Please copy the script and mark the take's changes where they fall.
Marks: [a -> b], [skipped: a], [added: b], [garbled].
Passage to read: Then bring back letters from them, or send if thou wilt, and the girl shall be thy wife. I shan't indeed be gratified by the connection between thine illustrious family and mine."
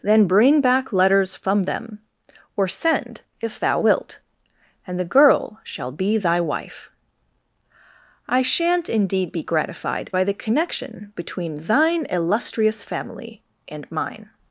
Then bring back letters from them, or send if thou wilt, and the girl shall be thy wife. I shan't indeed be gratified by the connection between thine illustrious family and mine."